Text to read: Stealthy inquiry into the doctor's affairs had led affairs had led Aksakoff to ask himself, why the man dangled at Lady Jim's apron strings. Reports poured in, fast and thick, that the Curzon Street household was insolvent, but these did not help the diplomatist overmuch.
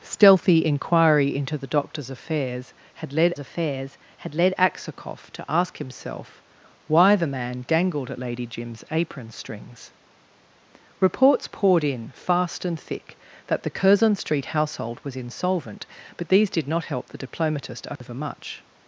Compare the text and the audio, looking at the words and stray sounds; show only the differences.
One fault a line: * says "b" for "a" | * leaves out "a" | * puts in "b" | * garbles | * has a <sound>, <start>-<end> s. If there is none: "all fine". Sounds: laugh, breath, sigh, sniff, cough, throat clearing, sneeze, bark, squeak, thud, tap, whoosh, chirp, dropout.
* has a dropout, 18.0-18.0 s